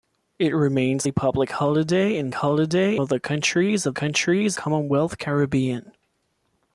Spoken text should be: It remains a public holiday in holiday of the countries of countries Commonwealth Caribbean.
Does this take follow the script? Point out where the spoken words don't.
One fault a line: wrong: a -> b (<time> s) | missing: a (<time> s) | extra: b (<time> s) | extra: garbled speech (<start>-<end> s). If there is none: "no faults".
no faults